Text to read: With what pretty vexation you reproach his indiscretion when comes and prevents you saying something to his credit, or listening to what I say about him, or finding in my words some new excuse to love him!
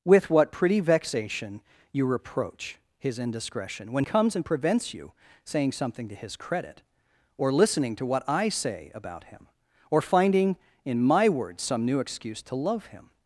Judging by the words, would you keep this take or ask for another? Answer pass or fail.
pass